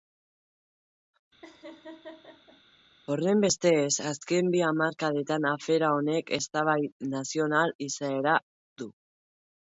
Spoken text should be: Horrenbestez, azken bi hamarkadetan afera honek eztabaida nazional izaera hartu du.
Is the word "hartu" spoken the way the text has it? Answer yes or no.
no